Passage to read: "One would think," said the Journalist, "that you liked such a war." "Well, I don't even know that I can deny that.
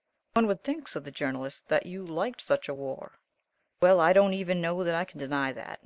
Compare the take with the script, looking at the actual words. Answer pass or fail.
pass